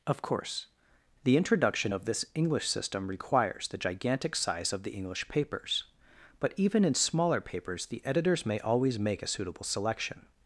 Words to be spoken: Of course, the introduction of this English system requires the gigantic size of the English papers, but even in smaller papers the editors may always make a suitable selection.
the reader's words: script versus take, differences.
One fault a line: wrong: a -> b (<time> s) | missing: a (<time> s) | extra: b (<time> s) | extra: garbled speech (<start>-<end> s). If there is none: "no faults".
no faults